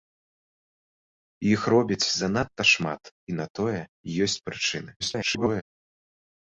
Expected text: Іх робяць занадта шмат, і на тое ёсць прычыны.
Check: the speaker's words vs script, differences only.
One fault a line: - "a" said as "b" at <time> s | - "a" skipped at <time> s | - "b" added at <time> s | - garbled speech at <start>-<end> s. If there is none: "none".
- garbled speech at 5.0-5.6 s